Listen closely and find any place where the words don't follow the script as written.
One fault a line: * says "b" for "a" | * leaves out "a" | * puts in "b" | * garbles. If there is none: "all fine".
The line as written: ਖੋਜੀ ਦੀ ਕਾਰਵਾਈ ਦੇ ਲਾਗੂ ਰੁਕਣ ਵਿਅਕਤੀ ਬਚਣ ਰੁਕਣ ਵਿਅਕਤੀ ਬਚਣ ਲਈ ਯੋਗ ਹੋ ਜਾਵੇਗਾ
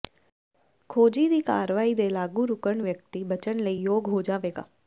* leaves out "ਰੁਕਣ ਵਿਅਕਤੀ ਬਚਣ"